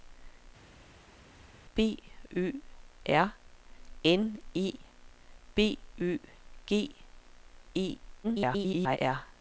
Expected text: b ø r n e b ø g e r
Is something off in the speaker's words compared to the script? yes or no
yes